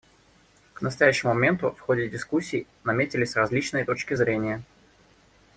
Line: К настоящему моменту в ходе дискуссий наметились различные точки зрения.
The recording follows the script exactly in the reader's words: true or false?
true